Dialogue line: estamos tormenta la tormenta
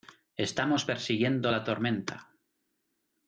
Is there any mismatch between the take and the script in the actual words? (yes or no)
yes